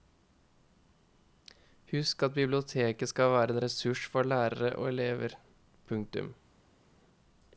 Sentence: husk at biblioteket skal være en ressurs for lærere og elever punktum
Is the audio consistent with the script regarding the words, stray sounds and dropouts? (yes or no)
yes